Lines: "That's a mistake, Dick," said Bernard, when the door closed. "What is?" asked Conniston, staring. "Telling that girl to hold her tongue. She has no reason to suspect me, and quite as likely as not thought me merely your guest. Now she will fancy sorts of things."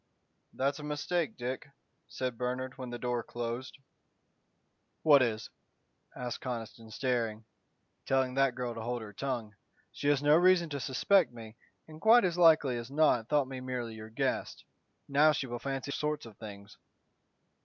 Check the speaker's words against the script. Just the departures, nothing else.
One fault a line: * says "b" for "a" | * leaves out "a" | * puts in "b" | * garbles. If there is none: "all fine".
all fine